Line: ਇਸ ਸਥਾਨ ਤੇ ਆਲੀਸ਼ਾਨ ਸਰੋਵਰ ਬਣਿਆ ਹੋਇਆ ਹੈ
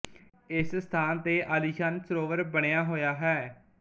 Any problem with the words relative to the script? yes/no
no